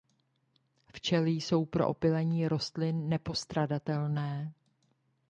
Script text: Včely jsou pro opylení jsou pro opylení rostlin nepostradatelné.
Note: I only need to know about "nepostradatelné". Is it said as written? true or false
true